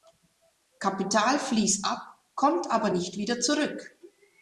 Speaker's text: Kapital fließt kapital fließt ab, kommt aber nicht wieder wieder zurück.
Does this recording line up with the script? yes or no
no